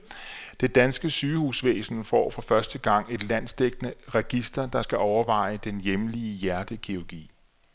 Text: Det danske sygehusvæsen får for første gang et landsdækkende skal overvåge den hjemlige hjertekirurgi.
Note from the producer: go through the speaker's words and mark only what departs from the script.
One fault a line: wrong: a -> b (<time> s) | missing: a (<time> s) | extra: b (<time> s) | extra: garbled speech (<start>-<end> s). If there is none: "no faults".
extra: register der (4.1 s)